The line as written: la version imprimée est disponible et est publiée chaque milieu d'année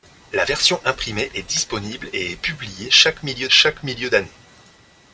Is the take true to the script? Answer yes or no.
no